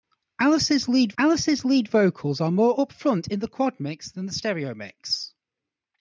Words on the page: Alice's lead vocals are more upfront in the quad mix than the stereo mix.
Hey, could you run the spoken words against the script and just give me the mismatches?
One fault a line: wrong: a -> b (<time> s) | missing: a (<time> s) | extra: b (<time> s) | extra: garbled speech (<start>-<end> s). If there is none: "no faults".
extra: alice's lead (1.2 s)